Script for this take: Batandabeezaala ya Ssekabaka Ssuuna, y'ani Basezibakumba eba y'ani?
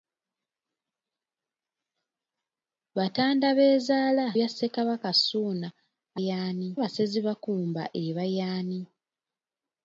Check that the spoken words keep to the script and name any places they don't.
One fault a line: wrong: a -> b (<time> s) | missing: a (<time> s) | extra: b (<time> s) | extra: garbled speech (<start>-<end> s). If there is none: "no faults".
no faults